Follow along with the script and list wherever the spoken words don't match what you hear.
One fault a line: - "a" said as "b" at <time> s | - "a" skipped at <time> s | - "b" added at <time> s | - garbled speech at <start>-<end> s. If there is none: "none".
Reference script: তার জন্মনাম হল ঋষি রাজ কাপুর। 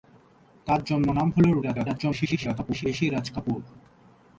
- garbled speech at 1.6-2.9 s